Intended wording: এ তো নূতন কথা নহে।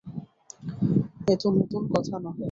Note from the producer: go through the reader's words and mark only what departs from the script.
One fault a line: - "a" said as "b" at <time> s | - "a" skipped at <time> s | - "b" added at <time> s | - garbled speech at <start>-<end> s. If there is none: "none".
none